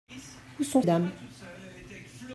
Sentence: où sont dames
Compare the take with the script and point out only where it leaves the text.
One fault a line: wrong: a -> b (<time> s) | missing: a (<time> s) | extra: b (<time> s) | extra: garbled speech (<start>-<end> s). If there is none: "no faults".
no faults